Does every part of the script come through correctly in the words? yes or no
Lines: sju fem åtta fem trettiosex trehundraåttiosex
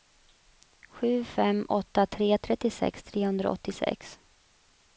no